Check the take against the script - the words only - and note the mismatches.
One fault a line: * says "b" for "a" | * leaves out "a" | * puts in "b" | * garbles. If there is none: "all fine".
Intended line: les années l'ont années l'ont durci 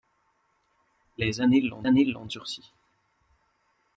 all fine